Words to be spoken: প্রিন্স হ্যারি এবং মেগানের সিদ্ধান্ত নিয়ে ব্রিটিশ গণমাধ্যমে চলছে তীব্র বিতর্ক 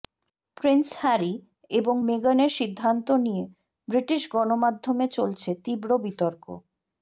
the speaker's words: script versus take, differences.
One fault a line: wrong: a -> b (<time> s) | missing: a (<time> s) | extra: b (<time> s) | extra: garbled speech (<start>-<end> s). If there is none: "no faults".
no faults